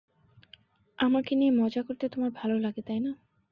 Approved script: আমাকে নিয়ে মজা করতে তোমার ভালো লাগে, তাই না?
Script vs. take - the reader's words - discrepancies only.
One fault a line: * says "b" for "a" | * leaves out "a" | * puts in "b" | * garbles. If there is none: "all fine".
all fine